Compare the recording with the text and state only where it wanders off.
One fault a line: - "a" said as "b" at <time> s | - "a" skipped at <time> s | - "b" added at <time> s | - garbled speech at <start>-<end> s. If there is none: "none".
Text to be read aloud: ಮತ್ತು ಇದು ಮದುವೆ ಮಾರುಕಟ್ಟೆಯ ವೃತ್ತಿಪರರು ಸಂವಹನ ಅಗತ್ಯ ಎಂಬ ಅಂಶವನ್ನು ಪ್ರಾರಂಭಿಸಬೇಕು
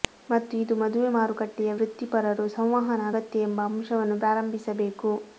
none